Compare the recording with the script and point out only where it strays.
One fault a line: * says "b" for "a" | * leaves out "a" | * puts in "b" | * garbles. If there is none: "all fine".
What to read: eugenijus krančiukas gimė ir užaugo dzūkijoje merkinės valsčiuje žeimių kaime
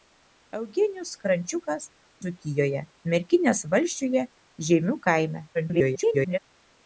* leaves out "gimė ir užaugo"
* garbles